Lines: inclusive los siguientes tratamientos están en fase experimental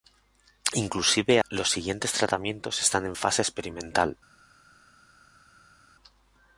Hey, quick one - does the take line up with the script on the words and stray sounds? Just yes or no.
yes